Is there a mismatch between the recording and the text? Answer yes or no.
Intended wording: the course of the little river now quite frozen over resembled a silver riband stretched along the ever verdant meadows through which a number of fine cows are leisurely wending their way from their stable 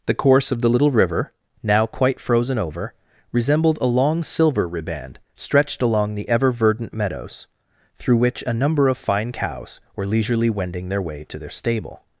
yes